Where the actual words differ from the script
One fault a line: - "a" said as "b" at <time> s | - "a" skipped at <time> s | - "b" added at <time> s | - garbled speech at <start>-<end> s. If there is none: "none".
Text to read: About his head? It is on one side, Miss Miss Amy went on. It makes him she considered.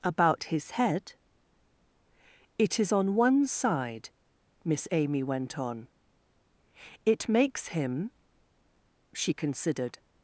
- "Miss" skipped at 4.9 s